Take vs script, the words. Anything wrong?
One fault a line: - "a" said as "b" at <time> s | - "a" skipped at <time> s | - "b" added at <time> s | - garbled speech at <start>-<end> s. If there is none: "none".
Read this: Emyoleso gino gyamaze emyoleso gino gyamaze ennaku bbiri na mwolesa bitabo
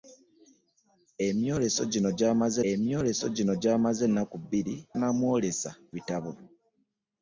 none